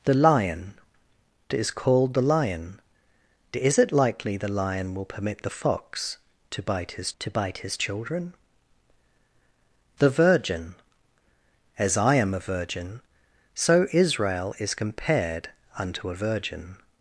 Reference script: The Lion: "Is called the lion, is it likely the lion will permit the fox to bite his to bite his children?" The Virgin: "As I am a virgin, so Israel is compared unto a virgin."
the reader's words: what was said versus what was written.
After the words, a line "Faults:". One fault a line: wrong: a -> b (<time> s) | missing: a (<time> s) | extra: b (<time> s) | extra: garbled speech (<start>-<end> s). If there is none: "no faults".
The Lion: "Is called the lion, is it likely the lion will permit the fox to bite his to bite his children?" The Virgin: "As I am a virgin, so Israel is compared unto a virgin."
Faults:
no faults